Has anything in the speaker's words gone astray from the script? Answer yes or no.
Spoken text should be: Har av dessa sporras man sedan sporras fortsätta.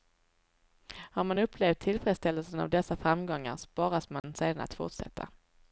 yes